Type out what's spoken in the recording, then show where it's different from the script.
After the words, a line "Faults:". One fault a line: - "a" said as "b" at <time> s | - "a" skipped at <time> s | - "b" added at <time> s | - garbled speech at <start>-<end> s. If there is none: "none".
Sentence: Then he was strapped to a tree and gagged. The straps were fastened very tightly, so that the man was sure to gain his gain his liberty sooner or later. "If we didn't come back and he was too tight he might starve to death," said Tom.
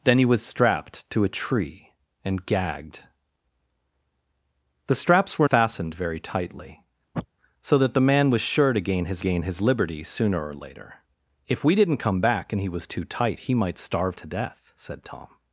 Then he was strapped to a tree and gagged. The straps were fastened very tightly, so that the man was sure to gain his gain his liberty sooner or later. "If we didn't come back and he was too tight he might starve to death," said Tom.
Faults:
none